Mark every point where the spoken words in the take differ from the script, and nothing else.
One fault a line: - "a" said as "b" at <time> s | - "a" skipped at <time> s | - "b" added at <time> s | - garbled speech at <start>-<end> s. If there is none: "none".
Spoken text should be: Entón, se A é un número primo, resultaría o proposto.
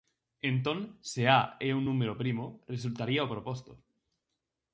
none